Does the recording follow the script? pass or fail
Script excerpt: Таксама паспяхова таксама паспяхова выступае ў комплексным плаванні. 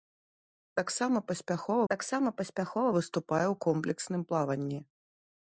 pass